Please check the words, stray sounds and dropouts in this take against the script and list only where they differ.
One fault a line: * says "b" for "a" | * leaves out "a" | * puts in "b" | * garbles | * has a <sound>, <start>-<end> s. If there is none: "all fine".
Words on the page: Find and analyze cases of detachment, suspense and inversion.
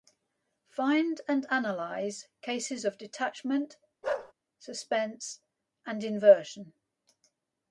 * has a bark, 4.0-4.3 s